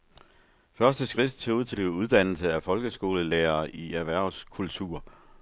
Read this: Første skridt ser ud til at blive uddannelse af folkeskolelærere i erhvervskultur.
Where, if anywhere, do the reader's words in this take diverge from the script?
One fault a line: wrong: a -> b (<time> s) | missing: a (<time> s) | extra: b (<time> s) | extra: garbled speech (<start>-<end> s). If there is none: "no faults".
missing: at (1.8 s)